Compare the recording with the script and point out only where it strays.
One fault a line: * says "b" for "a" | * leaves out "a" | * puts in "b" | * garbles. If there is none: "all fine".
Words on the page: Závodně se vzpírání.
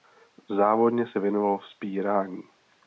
* puts in "věnoval"